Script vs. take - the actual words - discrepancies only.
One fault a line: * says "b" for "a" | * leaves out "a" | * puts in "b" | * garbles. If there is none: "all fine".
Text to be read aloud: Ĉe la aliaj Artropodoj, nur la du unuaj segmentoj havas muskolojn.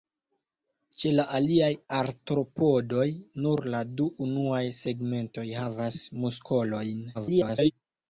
* garbles